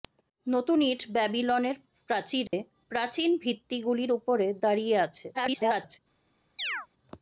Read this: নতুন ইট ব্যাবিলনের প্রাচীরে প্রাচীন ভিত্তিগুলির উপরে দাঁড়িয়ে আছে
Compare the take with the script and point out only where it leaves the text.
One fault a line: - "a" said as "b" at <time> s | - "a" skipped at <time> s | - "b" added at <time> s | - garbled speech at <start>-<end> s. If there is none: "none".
- garbled speech at 5.3-6.0 s